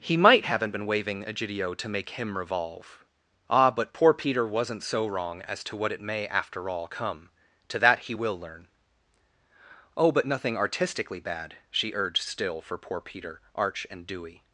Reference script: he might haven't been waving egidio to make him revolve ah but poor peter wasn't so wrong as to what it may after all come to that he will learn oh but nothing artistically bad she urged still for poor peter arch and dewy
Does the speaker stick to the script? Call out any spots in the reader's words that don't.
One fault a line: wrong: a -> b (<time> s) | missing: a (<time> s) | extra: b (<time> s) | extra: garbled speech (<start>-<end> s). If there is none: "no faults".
no faults